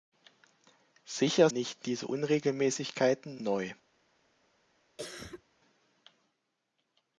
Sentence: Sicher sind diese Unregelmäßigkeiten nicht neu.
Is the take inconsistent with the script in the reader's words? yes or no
yes